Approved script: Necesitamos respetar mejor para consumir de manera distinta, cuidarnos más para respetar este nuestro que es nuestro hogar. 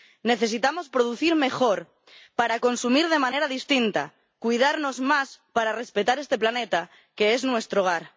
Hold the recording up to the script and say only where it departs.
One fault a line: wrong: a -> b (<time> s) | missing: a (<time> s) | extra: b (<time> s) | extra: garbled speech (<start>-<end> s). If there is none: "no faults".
wrong: respetar -> producir (0.9 s)
wrong: nuestro -> planeta (6.4 s)